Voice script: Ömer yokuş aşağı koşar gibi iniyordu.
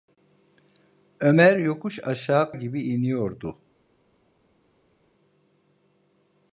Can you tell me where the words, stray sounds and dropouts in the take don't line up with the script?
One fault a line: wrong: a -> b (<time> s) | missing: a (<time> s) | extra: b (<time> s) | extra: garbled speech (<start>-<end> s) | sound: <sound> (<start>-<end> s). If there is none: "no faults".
missing: koşar (2.5 s)